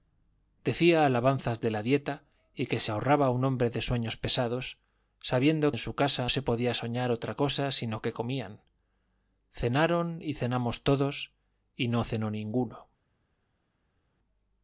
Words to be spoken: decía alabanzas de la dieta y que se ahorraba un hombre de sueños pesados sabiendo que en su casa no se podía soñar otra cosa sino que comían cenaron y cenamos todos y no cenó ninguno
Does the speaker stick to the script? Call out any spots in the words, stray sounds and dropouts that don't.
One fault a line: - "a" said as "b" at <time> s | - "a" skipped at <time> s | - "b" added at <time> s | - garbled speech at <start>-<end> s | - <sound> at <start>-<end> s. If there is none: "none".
- "que" skipped at 5.7 s
- "no" skipped at 6.3 s